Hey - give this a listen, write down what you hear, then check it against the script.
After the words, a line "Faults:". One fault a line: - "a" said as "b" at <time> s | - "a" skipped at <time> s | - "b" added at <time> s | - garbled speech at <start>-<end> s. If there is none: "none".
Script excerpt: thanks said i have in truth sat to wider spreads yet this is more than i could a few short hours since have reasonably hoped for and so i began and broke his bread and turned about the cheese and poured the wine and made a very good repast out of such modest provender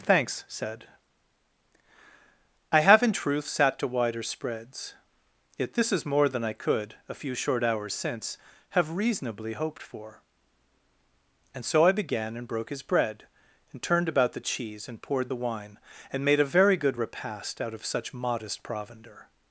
thanks said i have in truth sat to wider spreads yet this is more than i could a few short hours since have reasonably hoped for and so i began and broke his bread and turned about the cheese and poured the wine and made a very good repast out of such modest provender
Faults:
none